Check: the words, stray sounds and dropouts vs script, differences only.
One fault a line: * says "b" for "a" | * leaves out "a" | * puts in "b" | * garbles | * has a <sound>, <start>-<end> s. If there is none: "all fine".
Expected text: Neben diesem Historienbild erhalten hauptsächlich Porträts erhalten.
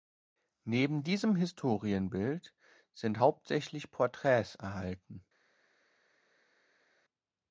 * says "sind" for "erhalten"